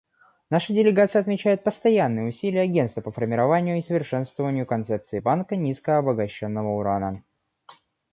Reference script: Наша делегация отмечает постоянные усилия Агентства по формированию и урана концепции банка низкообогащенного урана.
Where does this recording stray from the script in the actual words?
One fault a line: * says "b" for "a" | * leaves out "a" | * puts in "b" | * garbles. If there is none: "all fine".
* says "совершенствованию" for "урана"